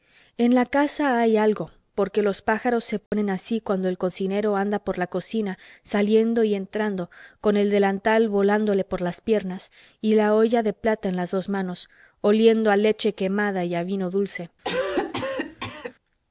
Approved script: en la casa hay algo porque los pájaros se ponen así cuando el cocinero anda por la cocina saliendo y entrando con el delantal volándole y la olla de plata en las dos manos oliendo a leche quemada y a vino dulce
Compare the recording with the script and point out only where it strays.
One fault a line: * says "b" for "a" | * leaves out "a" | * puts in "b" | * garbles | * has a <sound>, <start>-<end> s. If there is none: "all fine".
* has a dropout, 3.1-3.1 s
* puts in "por las piernas"
* has a cough, 14.6-15.9 s